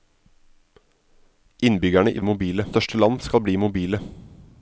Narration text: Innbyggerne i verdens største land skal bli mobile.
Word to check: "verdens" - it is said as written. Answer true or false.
false